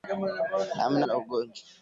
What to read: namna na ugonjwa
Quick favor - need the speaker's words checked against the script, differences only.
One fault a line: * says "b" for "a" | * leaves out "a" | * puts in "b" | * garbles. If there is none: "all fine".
all fine